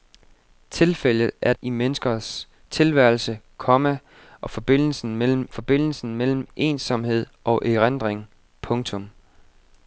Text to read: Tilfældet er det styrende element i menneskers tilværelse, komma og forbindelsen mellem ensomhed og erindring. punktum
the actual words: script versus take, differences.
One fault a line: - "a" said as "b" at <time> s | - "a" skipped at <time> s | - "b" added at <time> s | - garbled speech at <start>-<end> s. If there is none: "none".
- "det styrende element" skipped at 1.5 s
- "forbindelsen mellem" added at 5.5 s